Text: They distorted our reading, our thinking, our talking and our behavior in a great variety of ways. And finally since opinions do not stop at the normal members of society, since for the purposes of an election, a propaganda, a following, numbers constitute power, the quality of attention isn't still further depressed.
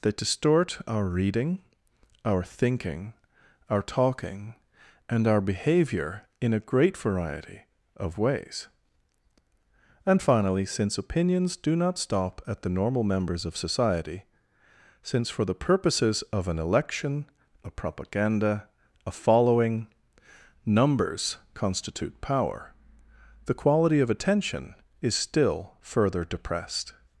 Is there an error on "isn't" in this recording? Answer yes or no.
yes